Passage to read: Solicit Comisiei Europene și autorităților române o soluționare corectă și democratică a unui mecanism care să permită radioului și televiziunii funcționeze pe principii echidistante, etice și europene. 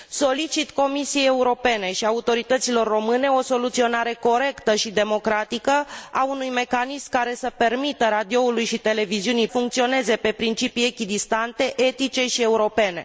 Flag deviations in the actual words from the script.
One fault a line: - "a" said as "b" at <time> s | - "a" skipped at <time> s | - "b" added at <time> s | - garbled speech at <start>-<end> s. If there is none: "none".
none